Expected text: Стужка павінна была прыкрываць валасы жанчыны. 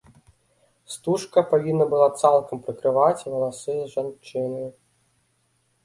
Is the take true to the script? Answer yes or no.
no